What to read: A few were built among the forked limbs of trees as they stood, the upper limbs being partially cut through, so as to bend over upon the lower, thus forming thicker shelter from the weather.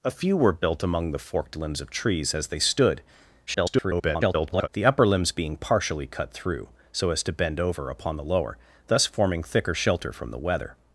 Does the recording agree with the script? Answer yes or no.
no